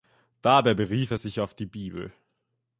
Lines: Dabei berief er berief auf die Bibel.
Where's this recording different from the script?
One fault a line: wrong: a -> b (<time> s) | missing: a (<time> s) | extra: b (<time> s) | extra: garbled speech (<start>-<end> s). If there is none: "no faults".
wrong: berief -> sich (1.1 s)